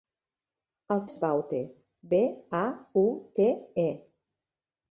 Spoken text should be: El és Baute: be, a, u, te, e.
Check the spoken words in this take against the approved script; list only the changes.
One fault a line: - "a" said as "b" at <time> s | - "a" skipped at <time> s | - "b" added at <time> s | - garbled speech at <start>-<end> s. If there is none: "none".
none